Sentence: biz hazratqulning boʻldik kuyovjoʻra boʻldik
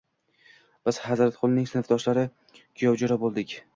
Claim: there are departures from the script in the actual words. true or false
true